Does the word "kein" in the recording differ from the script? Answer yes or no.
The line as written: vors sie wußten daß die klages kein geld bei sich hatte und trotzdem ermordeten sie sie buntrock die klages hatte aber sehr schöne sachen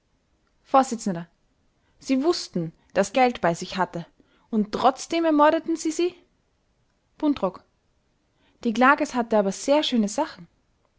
yes